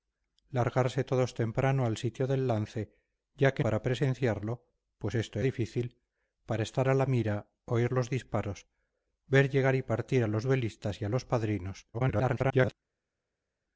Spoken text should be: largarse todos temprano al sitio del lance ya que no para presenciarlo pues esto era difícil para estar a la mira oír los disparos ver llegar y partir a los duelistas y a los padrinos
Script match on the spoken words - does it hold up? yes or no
no